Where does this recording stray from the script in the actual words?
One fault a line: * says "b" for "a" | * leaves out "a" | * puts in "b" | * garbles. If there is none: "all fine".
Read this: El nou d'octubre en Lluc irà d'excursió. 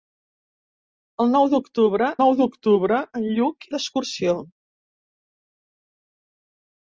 * puts in "nou d'octubre"
* leaves out "irà"